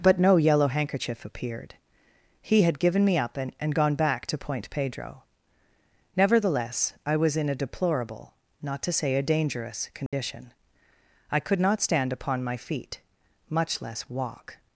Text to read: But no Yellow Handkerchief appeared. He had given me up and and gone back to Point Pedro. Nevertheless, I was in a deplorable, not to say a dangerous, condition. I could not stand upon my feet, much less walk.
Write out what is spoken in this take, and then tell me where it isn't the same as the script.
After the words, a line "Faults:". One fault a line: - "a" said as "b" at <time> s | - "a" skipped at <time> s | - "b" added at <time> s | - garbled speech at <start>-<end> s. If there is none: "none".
But no Yellow Handkerchief appeared. He had given me up and and gone back to Point Pedro. Nevertheless, I was in a deplorable, not to say a dangerous, condition. I could not stand upon my feet, much less walk.
Faults:
none